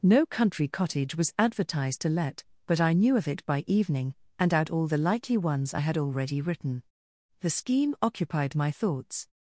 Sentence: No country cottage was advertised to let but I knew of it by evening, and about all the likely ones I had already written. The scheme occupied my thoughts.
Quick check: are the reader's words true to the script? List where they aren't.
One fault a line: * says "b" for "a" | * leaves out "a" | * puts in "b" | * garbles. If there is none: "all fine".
* says "out" for "about"